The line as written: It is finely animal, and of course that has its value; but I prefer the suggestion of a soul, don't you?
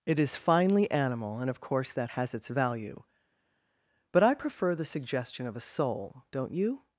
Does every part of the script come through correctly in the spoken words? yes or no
yes